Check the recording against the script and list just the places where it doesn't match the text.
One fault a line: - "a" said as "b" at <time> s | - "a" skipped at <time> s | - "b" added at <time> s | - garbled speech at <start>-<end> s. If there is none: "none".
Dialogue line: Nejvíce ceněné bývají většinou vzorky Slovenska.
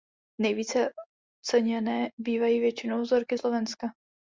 none